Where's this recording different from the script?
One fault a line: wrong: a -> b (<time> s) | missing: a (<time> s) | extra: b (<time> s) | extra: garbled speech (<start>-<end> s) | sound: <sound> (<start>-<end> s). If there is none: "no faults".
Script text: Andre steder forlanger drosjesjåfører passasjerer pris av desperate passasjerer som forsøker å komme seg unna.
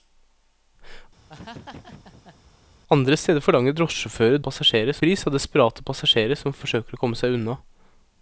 sound: laugh (1.3-2.4 s)